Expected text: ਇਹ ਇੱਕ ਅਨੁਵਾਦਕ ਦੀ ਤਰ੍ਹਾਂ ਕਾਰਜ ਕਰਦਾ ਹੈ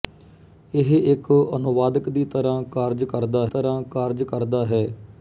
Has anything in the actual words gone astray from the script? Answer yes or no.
yes